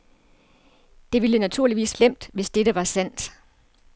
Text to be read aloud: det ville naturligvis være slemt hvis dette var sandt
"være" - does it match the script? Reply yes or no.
no